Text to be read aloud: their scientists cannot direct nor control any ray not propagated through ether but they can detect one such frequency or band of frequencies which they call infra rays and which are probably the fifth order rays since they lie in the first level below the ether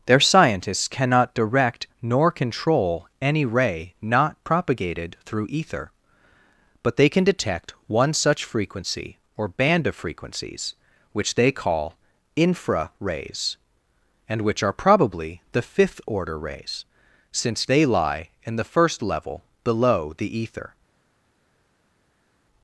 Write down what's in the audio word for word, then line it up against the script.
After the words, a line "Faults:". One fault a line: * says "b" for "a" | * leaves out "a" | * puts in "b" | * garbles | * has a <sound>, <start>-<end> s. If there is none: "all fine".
their scientists cannot direct nor control any ray not propagated through ether but they can detect one such frequency or band of frequencies which they call infra rays and which are probably the fifth order rays since they lie in the first level below the ether
Faults:
all fine